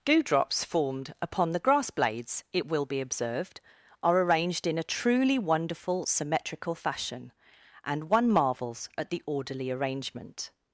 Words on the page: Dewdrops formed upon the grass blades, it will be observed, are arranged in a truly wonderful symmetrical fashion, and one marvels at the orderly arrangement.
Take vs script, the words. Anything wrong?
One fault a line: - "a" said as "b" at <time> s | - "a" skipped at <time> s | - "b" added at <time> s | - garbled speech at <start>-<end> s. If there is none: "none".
none